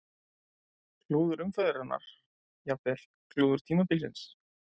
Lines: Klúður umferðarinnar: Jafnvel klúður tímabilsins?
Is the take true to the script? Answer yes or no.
yes